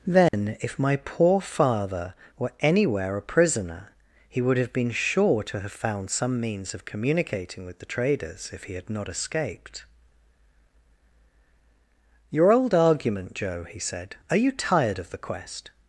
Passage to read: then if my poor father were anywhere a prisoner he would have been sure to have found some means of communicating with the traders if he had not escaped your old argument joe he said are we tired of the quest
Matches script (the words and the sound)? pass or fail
fail